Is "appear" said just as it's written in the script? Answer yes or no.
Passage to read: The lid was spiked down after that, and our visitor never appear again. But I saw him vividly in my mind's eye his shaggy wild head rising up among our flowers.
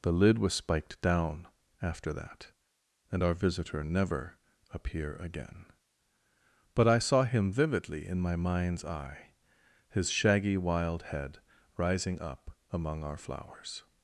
yes